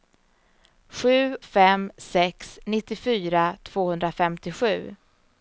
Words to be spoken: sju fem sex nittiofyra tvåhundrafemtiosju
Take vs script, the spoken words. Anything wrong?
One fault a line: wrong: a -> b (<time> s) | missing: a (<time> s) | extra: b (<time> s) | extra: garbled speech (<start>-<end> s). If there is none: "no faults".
no faults